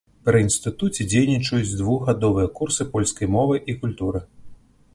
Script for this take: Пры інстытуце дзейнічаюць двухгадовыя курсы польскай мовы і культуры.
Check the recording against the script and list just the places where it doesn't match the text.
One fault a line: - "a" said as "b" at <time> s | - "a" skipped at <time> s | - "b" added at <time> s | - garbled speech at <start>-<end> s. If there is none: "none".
none